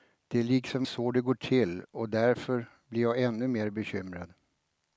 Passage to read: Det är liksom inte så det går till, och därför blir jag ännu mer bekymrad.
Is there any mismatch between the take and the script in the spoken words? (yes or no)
yes